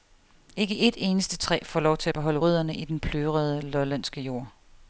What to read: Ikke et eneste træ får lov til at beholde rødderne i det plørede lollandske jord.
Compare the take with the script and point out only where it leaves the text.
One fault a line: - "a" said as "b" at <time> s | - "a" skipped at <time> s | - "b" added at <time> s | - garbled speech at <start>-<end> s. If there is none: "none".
- "det" said as "den" at 2.9 s